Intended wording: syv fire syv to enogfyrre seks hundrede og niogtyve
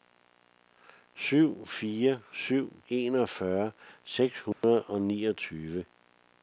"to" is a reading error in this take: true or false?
true